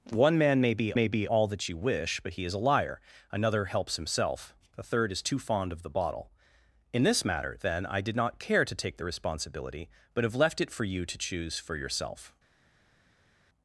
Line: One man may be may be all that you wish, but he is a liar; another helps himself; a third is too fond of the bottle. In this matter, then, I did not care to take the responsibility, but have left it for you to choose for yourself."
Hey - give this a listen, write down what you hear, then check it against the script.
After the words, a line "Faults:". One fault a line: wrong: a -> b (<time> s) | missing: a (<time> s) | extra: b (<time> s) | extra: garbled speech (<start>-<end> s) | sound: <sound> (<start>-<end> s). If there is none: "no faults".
One man may be may be all that you wish, but he is a liar; another helps himself; a third is too fond of the bottle. In this matter, then, I did not care to take the responsibility, but have left it for you to choose for yourself."
Faults:
no faults